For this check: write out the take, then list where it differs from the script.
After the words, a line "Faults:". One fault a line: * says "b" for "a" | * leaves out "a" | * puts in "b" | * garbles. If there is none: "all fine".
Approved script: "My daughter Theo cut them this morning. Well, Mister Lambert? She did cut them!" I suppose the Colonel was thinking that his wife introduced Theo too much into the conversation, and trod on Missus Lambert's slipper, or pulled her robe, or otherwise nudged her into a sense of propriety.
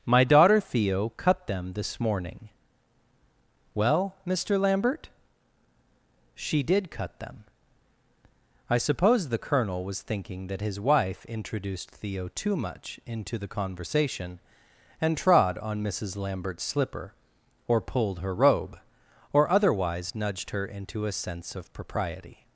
"My daughter Theo cut them this morning. Well, Mister Lambert? She did cut them!" I suppose the Colonel was thinking that his wife introduced Theo too much into the conversation, and trod on Missus Lambert's slipper, or pulled her robe, or otherwise nudged her into a sense of propriety.
Faults:
all fine